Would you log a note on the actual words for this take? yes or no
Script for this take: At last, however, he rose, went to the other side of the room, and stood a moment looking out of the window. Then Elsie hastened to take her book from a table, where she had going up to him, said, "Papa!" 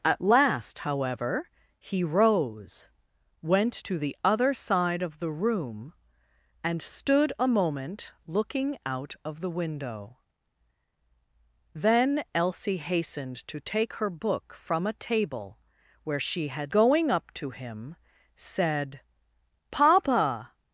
no